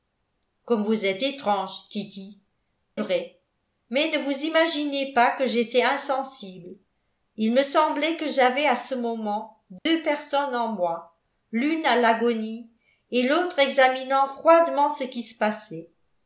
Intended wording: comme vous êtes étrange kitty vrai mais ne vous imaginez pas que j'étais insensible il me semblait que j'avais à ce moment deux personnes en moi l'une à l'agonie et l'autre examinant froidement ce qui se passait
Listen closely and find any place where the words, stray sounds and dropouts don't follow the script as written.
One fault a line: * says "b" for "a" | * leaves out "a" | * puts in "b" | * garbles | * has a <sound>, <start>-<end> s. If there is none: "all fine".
* has a dropout, 9.8-9.9 s